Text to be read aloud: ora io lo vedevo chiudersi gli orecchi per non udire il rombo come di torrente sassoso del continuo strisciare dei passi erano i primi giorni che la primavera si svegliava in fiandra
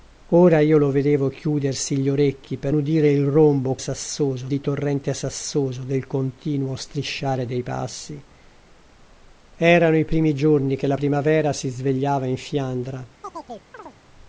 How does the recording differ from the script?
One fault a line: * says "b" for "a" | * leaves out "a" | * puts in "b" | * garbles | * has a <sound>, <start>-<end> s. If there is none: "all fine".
* leaves out "non"
* says "sassoso" for "come"
* has a chirp, 13.2-14.0 s